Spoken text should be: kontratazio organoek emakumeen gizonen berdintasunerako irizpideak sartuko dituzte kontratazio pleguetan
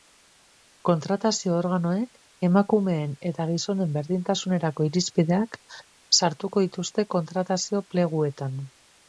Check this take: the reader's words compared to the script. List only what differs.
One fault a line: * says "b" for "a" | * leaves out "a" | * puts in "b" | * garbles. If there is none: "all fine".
* puts in "eta"